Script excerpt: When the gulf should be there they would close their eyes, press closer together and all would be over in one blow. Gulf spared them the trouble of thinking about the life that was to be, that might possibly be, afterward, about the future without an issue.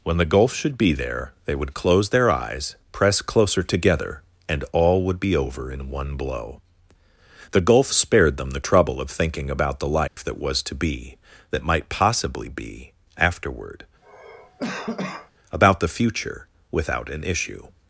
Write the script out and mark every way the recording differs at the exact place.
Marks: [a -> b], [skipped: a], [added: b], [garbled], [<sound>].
When the gulf should be there they would close their eyes, press closer together and all would be over in one blow. [added: The] Gulf spared them the trouble of thinking about the life [dropout] that was to be, that might possibly be, afterward, [cough] about the future without an issue.